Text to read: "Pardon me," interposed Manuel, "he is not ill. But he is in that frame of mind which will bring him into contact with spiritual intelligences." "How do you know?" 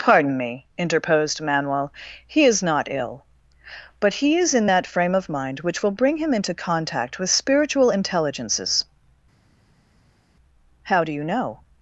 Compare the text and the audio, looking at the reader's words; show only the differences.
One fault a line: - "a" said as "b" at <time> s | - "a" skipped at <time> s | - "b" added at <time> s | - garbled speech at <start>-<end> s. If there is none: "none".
none